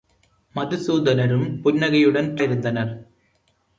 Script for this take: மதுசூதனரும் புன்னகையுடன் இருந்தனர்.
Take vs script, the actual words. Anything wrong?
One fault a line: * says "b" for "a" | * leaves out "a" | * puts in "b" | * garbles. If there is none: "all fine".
all fine